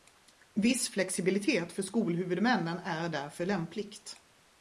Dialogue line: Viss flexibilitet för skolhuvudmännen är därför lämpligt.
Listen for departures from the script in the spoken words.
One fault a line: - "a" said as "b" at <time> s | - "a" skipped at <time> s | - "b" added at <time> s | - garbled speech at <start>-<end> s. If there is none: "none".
none